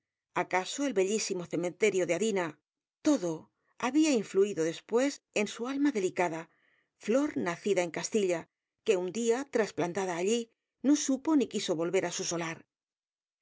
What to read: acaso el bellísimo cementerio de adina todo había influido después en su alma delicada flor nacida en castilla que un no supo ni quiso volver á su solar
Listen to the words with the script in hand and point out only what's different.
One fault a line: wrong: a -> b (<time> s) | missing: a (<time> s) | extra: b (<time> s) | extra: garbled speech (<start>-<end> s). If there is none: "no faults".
extra: día trasplantada allí (9.1 s)